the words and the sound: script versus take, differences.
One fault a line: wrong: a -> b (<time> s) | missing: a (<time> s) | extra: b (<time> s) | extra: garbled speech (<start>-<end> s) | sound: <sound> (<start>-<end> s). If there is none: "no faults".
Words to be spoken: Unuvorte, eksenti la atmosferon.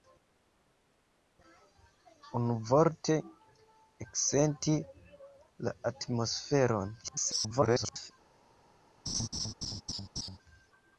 extra: garbled speech (7.0-8.1 s)
sound: laugh (9.1-10.4 s)